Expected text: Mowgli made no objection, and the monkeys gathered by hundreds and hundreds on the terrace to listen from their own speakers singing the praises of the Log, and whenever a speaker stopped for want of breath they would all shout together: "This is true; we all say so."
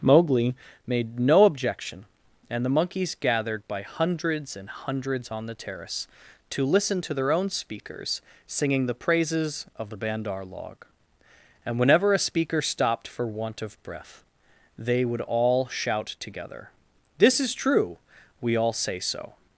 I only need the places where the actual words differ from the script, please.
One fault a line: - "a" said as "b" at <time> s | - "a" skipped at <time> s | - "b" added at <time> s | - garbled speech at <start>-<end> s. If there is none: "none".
- "from" said as "to" at 7.0 s
- "Bandar" added at 10.0 s